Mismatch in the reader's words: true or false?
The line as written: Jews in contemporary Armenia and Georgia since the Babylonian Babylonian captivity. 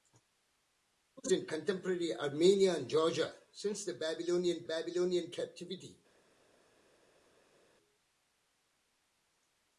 false